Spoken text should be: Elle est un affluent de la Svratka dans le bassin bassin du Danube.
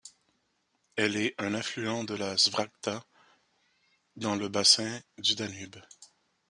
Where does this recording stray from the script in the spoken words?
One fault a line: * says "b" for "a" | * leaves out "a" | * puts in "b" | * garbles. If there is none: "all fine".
* leaves out "bassin"